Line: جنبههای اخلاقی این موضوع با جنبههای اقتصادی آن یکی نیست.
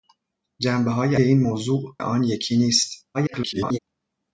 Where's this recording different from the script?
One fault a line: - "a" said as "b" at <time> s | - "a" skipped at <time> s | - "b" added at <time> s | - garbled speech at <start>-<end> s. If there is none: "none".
- "اخلاقی" skipped at 1.1 s
- "با جنبههای اقتصادی" skipped at 2.0 s
- garbled speech at 3.1-3.8 s